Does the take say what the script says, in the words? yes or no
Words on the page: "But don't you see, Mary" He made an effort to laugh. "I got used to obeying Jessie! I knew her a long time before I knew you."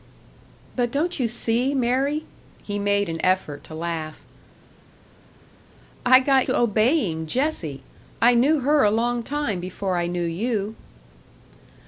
no